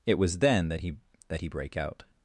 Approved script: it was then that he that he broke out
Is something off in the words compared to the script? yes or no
yes